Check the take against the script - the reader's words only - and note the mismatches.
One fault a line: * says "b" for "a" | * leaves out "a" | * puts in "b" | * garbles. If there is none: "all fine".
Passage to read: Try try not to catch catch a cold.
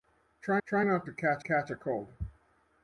all fine